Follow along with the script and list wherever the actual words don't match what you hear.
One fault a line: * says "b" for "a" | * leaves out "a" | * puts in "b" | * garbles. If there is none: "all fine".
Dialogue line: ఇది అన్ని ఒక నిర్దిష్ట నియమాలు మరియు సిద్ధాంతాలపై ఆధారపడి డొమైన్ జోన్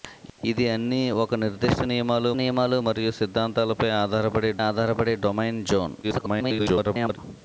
* puts in "నియమాలు"
* puts in "ఆధారపడి"
* garbles